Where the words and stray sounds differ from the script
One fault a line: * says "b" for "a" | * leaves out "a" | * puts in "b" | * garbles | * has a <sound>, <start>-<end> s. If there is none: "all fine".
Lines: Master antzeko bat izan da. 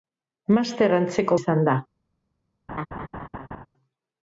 * leaves out "bat"
* has a laugh, 2.7-3.7 s